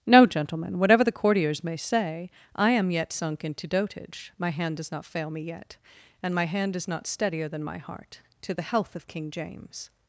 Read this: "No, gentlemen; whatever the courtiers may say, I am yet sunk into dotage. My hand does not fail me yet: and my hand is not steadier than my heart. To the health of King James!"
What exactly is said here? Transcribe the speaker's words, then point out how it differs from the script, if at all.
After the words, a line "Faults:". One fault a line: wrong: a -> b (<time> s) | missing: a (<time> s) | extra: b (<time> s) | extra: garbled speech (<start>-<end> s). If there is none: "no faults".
"No, gentlemen; whatever the courtiers may say, I am yet sunk into dotage. My hand does not fail me yet: and my hand is not steadier than my heart. To the health of King James!"
Faults:
no faults